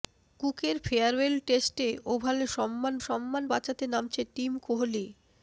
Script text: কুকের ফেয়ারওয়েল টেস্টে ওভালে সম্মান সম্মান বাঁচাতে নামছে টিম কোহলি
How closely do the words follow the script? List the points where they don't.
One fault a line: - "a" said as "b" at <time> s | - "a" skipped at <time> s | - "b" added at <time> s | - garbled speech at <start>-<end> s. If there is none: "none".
none